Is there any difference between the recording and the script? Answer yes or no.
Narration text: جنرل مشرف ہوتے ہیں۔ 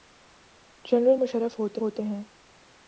yes